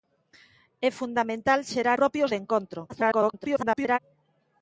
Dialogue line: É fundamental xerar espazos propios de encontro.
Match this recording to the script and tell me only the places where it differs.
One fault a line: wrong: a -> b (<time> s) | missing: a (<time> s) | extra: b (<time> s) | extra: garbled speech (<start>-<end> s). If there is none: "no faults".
missing: espazos (2.0 s)
extra: garbled speech (2.9-4.0 s)